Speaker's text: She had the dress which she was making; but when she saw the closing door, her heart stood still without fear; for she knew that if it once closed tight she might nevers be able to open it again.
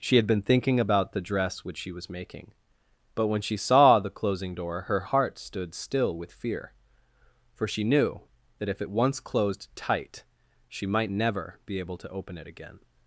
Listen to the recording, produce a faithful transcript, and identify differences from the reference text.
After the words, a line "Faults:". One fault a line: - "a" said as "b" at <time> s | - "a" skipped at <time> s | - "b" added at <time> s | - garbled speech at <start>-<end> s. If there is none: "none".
She had been thinking about the dress which she was making; but when she saw the closing door, her heart stood still with fear; for she knew that if it once closed tight she might never be able to open it again.
Faults:
- "been thinking about" added at 0.2 s
- "without" said as "with" at 6.2 s
- "nevers" said as "never" at 11.1 s